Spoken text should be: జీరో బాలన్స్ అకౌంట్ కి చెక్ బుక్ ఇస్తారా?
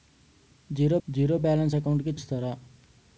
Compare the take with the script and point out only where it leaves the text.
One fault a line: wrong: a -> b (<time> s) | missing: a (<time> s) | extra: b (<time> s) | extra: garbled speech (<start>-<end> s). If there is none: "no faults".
extra: జీరో (1.1 s)
missing: చెక్ బుక్ (2.1 s)